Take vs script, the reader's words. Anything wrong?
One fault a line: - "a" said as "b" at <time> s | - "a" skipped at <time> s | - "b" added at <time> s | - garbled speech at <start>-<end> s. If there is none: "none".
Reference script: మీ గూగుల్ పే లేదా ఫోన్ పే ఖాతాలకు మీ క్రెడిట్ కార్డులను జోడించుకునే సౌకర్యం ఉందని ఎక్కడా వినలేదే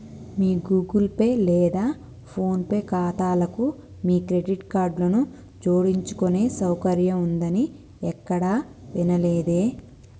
none